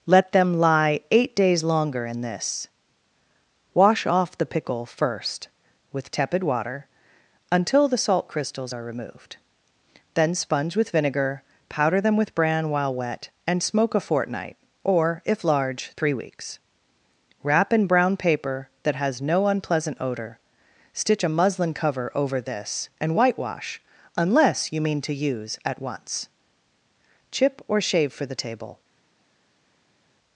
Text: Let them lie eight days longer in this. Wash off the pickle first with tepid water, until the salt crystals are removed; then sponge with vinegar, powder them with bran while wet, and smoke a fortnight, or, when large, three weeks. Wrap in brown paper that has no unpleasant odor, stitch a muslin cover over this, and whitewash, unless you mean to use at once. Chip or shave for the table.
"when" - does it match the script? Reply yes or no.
no